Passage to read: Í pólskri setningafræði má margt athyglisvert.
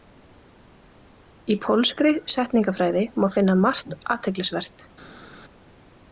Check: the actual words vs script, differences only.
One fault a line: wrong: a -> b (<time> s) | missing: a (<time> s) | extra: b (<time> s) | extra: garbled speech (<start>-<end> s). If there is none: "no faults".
extra: finna (3.4 s)